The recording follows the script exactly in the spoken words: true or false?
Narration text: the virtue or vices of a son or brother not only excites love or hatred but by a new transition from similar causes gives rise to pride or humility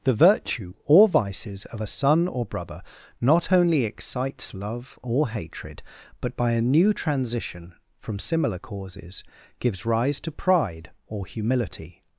true